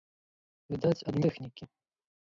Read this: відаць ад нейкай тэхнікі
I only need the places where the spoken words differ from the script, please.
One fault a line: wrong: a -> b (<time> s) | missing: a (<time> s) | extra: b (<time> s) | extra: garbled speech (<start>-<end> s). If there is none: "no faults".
missing: нейкай (1.2 s)